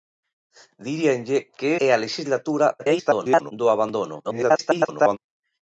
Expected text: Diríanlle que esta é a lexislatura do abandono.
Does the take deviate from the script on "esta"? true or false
true